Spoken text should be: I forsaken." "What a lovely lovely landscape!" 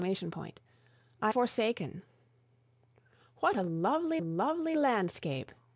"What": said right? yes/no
yes